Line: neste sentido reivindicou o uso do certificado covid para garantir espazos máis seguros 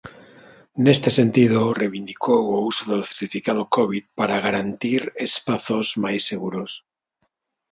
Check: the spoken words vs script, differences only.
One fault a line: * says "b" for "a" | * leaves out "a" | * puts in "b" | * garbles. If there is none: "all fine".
all fine